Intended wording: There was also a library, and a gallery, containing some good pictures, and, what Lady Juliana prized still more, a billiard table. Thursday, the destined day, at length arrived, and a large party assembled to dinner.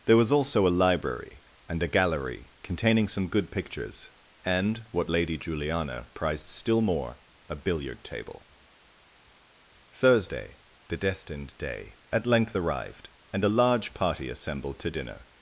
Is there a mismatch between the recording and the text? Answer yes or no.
no